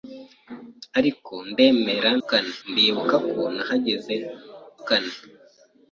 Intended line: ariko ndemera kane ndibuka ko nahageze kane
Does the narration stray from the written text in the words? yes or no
no